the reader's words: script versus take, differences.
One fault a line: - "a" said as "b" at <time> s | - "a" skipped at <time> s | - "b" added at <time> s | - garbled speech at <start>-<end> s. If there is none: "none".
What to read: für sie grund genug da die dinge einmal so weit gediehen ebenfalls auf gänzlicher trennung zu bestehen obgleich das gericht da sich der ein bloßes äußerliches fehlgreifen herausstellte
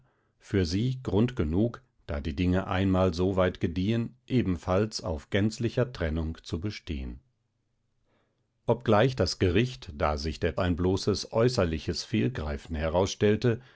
none